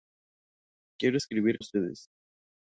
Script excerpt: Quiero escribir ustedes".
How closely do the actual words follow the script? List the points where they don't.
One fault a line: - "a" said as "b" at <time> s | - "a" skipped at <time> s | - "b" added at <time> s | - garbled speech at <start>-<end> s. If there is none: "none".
none